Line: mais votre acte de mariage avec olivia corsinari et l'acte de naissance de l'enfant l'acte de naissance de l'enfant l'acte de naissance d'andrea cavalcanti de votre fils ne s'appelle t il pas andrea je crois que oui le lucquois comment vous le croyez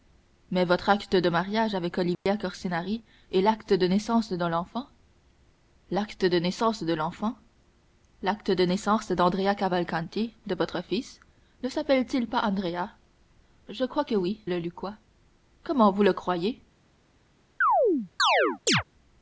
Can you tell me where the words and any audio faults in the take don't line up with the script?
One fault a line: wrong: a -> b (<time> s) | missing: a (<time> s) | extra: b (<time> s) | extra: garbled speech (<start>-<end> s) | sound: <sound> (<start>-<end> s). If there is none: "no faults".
sound: dropout (2.1-2.3 s)
sound: chirp (17.6-18.8 s)